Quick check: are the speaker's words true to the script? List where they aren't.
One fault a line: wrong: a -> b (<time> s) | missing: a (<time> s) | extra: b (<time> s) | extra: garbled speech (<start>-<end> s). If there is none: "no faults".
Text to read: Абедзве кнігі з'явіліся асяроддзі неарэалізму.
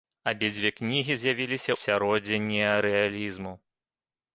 no faults